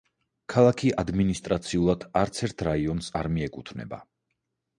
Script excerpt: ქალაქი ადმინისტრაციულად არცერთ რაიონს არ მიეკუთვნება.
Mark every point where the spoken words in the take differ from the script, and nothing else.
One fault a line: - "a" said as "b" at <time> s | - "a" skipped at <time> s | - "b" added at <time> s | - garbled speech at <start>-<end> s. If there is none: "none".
none